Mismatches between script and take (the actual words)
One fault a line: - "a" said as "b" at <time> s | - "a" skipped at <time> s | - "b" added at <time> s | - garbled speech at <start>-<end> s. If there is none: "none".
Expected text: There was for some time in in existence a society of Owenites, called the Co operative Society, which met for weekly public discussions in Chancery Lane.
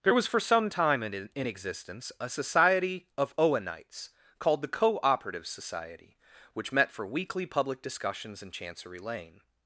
none